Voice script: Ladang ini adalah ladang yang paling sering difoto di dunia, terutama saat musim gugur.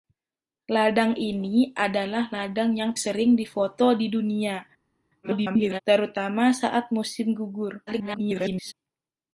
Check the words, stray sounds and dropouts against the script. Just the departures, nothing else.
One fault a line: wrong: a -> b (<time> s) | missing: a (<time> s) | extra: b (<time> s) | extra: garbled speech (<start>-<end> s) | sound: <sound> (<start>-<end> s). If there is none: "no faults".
missing: paling (3.0 s)
extra: garbled speech (5.2-5.8 s)
extra: garbled speech (7.9-8.7 s)